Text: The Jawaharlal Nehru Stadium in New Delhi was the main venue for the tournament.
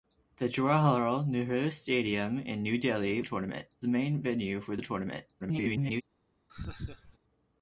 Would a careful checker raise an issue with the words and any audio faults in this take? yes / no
yes